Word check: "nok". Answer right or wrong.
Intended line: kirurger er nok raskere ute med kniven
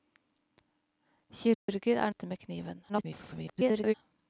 wrong